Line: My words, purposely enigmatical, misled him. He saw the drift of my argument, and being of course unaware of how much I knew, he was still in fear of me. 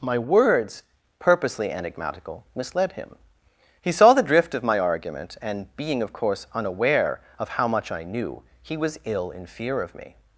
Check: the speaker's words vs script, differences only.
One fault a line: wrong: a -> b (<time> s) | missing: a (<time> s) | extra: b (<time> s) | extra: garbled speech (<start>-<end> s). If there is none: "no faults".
wrong: still -> ill (9.0 s)